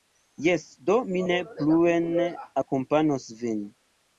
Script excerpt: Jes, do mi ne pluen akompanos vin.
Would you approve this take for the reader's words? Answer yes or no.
yes